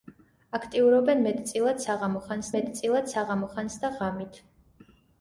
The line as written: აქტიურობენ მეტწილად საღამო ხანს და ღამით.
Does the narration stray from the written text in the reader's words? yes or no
yes